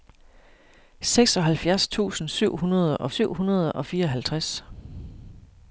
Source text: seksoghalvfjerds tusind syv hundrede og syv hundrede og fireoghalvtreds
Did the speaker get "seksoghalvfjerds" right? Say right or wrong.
right